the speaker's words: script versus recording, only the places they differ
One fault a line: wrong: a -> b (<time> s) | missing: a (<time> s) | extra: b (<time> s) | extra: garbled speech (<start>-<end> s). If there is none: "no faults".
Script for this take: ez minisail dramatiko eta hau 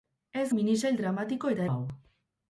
no faults